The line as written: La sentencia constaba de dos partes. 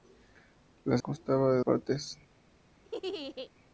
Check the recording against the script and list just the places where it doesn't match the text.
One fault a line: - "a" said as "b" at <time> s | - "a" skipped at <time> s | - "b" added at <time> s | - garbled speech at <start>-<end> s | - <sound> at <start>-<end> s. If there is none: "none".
- "sentencia" skipped at 1.0 s
- "dos" skipped at 1.6 s
- laugh at 2.8-3.5 s